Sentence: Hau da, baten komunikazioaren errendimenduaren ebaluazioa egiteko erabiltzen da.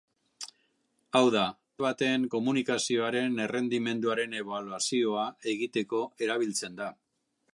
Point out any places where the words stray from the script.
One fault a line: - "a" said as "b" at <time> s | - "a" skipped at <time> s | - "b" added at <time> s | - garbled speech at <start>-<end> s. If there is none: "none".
none